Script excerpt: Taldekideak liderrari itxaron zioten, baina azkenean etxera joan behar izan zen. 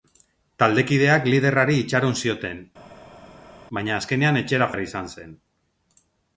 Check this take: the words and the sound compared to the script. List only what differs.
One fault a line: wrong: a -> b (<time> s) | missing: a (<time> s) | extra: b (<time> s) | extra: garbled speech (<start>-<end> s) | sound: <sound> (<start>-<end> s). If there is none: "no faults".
missing: joan (4.7 s)